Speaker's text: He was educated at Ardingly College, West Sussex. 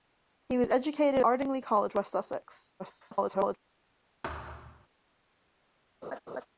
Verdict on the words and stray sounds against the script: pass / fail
fail